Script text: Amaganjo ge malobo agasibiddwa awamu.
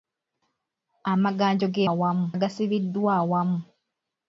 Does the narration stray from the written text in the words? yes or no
yes